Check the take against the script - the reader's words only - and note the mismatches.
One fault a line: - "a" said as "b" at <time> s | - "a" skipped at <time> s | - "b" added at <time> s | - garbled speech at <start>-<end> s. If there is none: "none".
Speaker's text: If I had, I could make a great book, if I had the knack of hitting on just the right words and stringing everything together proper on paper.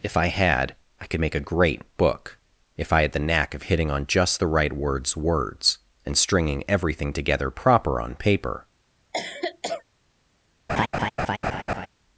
- "words" added at 5.1 s